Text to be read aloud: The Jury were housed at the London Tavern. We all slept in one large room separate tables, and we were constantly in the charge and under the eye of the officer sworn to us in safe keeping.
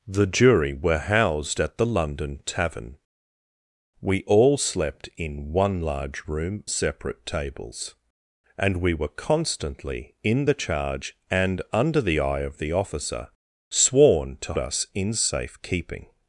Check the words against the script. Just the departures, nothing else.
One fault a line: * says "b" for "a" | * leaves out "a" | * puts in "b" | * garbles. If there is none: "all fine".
all fine